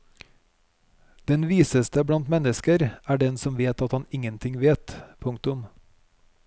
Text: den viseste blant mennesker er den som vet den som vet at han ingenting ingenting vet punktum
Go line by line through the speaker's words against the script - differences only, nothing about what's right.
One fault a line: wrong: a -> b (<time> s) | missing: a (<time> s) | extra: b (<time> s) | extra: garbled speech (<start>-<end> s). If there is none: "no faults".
missing: den som vet (3.8 s)
missing: ingenting (4.6 s)